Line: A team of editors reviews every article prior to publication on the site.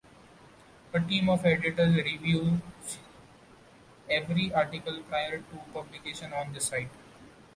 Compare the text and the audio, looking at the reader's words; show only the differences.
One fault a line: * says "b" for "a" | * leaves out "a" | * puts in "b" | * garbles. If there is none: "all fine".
all fine